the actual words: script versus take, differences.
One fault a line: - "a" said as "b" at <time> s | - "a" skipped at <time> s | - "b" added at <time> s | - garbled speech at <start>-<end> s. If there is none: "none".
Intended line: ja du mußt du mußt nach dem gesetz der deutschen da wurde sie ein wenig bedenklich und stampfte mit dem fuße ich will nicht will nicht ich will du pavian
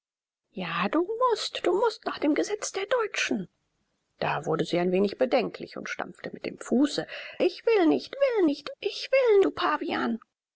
none